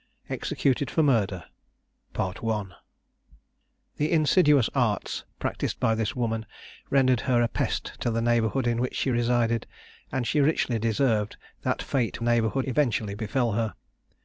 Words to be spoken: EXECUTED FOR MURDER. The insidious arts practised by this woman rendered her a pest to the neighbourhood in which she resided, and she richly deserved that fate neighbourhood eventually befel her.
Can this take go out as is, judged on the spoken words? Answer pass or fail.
pass